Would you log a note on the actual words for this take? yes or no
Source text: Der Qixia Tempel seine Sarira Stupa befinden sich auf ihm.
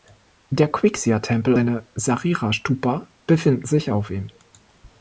no